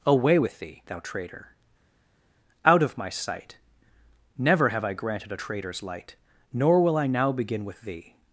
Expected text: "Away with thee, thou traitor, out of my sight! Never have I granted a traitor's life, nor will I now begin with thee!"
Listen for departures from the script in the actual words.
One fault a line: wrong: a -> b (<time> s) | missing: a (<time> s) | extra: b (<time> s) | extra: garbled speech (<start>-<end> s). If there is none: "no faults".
wrong: life -> light (5.8 s)